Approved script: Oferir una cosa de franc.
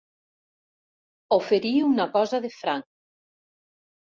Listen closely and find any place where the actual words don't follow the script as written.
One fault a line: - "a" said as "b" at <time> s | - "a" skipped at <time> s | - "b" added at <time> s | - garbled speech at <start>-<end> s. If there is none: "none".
none